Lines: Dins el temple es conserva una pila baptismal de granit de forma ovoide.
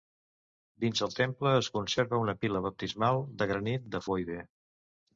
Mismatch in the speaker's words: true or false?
true